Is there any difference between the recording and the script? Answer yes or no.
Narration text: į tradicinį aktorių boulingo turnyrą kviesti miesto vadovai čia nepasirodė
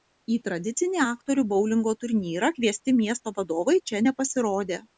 no